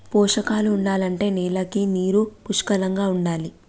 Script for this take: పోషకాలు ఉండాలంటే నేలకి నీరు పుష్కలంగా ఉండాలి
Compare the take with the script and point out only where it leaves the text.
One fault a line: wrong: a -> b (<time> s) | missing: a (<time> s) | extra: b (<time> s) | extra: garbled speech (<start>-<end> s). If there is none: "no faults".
no faults